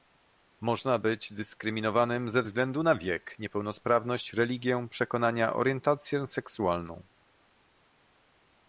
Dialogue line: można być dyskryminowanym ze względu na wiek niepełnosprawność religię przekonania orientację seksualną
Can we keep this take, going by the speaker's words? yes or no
yes